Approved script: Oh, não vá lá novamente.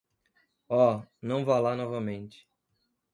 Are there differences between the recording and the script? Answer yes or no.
no